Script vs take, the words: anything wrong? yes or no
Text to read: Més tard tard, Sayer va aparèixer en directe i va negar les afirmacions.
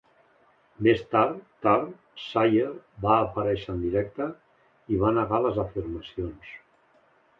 no